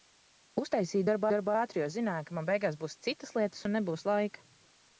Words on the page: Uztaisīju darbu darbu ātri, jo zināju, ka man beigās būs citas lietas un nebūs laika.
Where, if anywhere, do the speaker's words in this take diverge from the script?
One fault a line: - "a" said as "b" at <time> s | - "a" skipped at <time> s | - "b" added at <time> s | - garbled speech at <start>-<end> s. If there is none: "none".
none